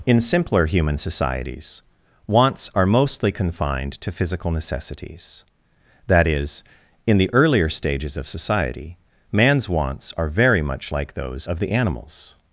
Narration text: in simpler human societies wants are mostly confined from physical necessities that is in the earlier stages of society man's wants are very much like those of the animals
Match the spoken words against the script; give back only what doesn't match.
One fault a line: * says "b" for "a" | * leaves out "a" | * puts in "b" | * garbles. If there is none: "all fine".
* says "to" for "from"